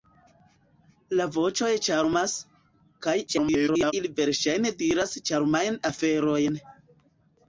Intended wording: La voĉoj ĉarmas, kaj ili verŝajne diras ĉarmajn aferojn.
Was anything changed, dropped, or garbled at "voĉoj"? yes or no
no